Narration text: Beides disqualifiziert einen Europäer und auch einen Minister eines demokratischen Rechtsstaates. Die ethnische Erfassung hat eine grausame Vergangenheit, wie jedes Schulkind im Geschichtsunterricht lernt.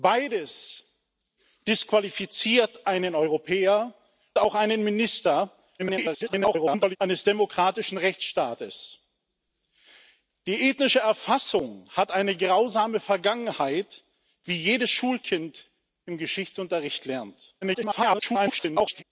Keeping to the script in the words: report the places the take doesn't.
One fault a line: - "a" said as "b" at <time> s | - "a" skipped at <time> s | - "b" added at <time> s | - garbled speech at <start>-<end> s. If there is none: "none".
- "und" skipped at 3.9 s
- garbled speech at 5.8-7.0 s
- garbled speech at 17.6-19.0 s